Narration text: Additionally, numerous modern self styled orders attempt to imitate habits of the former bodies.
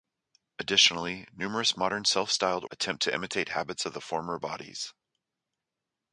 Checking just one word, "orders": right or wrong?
wrong